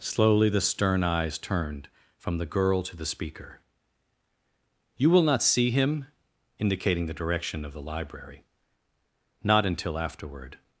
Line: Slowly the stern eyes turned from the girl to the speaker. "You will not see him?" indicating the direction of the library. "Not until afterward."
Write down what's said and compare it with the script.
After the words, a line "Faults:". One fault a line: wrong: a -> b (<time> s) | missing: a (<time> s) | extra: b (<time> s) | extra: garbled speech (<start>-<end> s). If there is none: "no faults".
Slowly the stern eyes turned from the girl to the speaker. "You will not see him?" indicating the direction of the library. "Not until afterward."
Faults:
no faults